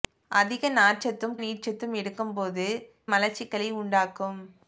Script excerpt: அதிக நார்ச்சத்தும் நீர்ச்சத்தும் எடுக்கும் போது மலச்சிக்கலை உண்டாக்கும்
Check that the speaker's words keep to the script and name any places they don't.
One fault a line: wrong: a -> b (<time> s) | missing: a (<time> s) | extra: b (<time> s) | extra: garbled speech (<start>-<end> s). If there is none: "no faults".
no faults